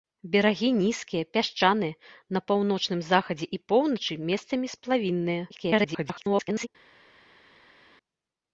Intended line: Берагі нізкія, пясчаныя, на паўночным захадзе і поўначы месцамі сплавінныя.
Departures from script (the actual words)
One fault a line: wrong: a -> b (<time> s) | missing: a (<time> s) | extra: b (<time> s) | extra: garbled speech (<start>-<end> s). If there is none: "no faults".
extra: garbled speech (5.5-6.7 s)